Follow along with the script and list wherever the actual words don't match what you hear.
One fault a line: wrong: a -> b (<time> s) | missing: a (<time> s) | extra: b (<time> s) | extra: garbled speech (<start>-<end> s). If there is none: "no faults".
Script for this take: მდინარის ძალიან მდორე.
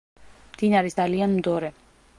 no faults